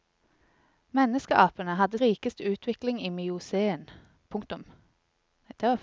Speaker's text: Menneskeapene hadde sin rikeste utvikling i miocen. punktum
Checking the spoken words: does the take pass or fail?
fail